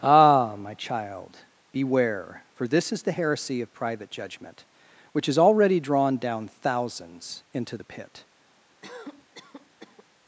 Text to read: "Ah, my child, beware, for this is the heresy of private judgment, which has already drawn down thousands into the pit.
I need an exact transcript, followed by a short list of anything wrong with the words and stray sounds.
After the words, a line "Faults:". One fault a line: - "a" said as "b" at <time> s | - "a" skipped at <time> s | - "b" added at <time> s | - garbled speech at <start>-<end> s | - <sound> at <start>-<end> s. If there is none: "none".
"Ah, my child, beware, for this is the heresy of private judgment, which has already drawn down thousands into the pit.
Faults:
- cough at 8.8-10.0 s